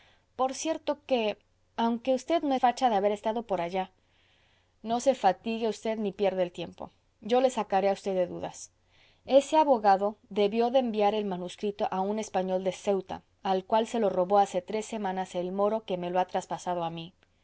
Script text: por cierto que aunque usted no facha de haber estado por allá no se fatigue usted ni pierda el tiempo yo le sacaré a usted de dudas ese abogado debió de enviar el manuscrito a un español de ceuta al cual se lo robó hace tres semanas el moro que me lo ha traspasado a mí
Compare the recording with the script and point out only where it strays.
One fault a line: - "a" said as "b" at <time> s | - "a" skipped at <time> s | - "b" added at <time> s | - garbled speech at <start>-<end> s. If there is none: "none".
none